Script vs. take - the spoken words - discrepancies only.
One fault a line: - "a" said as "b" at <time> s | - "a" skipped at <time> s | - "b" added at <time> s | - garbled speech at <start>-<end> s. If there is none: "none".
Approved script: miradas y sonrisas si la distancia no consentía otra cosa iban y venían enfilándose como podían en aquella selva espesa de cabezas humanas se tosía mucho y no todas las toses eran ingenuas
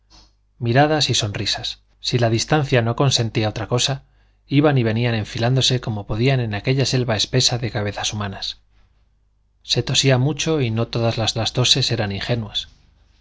- "las" added at 11.4 s